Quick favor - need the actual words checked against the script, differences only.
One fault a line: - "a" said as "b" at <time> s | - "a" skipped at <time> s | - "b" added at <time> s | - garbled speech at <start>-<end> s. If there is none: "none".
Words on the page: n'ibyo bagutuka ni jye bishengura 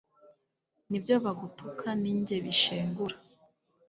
none